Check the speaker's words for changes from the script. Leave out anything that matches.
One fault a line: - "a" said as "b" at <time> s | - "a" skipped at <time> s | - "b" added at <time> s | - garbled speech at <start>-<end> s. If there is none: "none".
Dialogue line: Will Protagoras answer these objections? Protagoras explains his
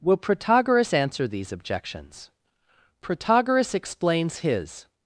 none